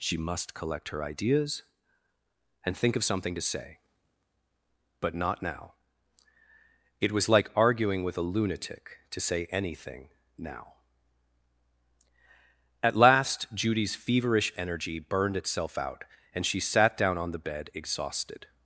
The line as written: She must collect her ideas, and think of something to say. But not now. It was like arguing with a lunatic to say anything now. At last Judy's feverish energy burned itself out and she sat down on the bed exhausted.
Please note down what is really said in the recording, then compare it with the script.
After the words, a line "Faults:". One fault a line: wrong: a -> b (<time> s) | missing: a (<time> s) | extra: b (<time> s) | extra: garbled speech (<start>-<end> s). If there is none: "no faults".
She must collect her ideas, and think of something to say. But not now. It was like arguing with a lunatic to say anything now. At last Judy's feverish energy burned itself out and she sat down on the bed exhausted.
Faults:
no faults